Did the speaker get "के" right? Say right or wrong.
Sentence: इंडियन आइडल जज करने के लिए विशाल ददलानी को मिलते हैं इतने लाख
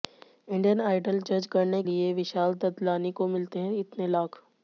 wrong